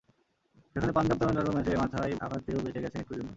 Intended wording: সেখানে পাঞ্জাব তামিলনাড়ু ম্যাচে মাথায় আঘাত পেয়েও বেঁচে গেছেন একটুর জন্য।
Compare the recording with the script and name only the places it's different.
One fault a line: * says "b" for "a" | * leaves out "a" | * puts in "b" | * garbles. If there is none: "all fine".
all fine